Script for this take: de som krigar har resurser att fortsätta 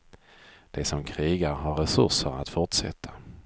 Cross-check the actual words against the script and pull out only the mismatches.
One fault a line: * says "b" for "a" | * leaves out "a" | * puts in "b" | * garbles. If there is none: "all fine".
all fine